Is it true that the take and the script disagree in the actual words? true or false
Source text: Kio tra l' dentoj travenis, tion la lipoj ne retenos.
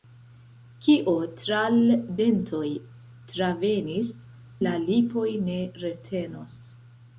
true